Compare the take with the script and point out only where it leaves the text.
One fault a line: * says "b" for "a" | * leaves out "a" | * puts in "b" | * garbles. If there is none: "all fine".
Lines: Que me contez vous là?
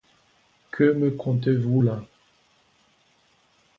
all fine